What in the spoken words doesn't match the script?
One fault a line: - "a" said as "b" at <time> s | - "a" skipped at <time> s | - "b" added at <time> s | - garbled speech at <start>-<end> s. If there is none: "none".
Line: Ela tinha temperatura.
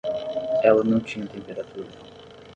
- "não" added at 0.8 s